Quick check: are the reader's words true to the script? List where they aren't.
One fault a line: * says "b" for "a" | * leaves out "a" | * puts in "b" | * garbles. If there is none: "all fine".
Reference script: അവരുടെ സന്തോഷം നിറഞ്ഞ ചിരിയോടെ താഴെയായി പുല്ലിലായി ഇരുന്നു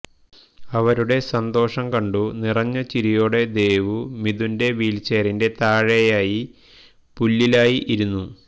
* puts in "കണ്ടു"
* puts in "ദേവു മിഥുന്റെ വീൽച്ചെയറിന്റെ"